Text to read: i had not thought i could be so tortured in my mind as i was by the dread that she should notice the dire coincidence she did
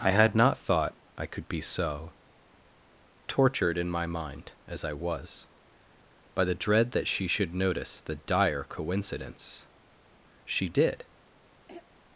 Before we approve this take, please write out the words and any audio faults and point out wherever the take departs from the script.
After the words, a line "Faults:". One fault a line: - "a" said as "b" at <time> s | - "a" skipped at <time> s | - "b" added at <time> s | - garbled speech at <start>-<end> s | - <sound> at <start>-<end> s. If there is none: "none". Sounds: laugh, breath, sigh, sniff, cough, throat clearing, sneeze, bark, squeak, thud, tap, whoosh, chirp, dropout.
i had not thought i could be so tortured in my mind as i was by the dread that she should notice the dire coincidence she did
Faults:
- throat clearing at 11.7-11.9 s